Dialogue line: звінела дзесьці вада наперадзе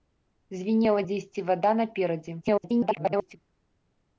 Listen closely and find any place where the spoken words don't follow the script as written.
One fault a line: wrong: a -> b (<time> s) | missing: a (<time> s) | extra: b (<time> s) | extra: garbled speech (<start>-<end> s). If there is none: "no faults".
extra: garbled speech (2.4-3.4 s)